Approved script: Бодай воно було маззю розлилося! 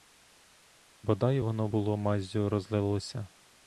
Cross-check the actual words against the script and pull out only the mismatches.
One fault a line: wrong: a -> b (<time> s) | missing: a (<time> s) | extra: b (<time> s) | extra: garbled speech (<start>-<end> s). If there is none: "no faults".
no faults